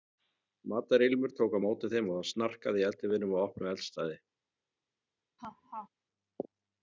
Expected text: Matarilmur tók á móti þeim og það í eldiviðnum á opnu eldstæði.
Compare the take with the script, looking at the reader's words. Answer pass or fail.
fail